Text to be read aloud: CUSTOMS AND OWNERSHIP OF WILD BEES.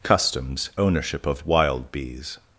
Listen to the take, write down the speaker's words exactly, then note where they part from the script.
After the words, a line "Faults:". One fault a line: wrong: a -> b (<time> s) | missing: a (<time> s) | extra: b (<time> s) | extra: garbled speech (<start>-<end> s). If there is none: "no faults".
CUSTOMS OWNERSHIP OF WILD BEES.
Faults:
missing: AND (0.7 s)